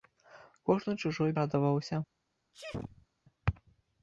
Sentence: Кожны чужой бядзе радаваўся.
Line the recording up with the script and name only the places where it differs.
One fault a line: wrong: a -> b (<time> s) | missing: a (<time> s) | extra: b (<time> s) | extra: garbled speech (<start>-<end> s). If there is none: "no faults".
missing: бядзе (1.3 s)